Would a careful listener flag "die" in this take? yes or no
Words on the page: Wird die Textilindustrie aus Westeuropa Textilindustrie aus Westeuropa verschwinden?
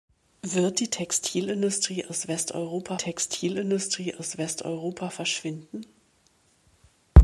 no